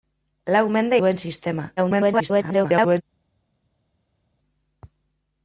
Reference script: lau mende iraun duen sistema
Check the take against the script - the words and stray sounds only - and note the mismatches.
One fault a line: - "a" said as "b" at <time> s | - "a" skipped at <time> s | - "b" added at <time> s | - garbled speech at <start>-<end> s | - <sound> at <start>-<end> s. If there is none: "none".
- "iraun" skipped at 1.0 s
- garbled speech at 1.8-3.0 s